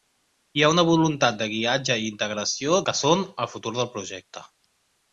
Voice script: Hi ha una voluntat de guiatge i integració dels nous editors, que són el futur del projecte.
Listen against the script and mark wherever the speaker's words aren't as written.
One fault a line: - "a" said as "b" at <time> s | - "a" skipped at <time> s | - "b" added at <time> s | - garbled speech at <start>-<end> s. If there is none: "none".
- "dels nous editors" skipped at 2.8 s